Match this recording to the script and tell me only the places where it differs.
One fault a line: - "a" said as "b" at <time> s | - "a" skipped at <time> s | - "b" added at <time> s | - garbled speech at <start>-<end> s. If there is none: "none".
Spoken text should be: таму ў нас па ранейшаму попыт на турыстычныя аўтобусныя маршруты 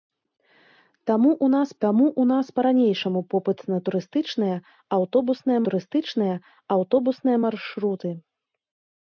- "таму ў нас" added at 1.9 s
- "турыстычныя аўтобусныя" added at 5.7 s